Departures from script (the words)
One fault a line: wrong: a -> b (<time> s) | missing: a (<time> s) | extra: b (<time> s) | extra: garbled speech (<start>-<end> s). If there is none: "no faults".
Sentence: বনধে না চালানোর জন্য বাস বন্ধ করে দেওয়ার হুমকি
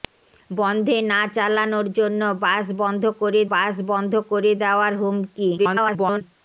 extra: বাস বন্ধ করে (3.5 s)
extra: garbled speech (5.6-6.2 s)